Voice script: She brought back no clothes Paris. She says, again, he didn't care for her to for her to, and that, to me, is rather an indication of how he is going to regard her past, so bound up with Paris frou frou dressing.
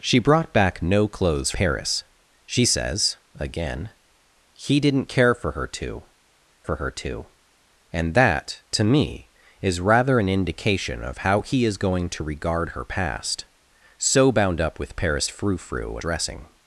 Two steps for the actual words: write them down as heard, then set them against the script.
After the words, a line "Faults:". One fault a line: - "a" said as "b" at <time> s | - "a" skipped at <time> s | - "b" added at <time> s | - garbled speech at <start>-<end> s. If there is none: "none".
She brought back no clothes Paris. She says, again, he didn't care for her to for her to, and that, to me, is rather an indication of how he is going to regard her past, so bound up with Paris frou frou dressing.
Faults:
none